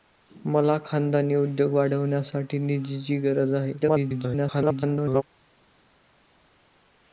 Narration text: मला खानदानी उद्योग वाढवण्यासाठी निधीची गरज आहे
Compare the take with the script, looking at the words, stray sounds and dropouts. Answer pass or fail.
fail